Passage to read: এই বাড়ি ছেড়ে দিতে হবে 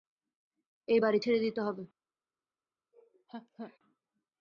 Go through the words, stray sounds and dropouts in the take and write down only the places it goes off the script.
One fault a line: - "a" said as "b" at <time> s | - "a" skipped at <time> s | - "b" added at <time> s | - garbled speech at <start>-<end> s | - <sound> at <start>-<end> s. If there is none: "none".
- laugh at 2.9-3.8 s